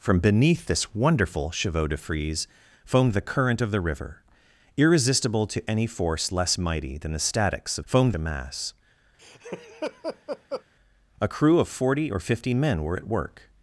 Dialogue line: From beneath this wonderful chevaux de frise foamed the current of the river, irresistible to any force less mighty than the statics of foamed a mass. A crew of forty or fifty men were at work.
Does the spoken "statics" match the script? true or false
true